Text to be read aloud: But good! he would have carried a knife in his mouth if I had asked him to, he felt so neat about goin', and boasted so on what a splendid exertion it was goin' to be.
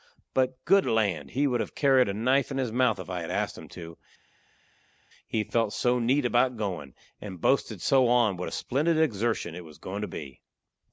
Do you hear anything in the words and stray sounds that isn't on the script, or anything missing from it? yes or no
yes